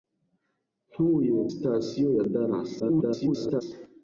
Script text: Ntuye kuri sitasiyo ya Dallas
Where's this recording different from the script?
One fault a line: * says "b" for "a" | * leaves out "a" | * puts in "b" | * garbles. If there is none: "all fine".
* leaves out "kuri"
* garbles